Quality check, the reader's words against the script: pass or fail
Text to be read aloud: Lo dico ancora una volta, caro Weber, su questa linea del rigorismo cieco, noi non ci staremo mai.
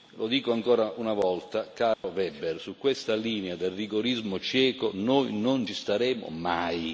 pass